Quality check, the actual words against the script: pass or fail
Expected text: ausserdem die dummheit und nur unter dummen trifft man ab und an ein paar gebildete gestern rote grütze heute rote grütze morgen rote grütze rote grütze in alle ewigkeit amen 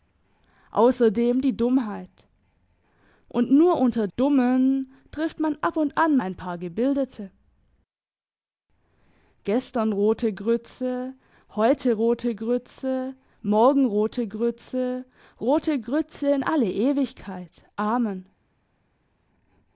pass